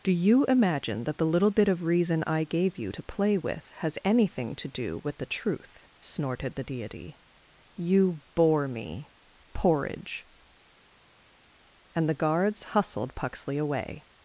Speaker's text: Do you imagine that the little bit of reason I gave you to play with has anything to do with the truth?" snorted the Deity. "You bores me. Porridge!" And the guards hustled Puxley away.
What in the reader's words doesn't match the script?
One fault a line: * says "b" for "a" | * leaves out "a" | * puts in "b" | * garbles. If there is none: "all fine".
* says "bore" for "bores"